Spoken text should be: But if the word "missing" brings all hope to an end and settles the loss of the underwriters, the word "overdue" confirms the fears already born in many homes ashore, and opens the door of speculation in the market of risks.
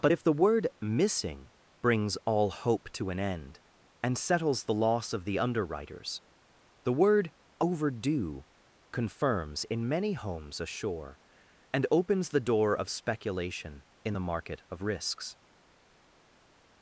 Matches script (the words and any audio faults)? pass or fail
fail